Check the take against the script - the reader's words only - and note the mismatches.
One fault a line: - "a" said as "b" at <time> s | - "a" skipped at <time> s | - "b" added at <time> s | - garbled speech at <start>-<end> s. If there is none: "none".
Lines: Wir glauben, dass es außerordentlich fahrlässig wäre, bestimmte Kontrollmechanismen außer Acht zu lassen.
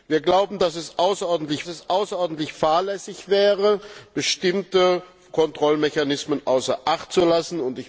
- "es außerordentlich" added at 1.7 s